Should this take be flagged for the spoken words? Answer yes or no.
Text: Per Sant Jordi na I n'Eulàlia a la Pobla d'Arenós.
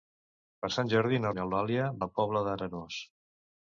no